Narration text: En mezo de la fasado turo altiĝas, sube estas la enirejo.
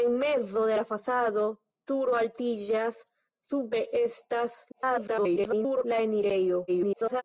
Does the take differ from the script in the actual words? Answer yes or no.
yes